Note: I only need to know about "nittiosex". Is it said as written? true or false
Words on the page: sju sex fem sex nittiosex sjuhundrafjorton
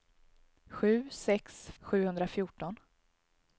false